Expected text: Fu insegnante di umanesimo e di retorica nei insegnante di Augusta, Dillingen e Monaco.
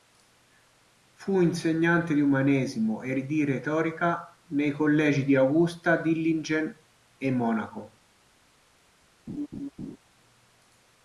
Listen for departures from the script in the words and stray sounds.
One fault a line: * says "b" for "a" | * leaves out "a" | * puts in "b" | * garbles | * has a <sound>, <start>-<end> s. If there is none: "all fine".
* says "collegi" for "insegnante"
* has a laugh, 9.3-10.0 s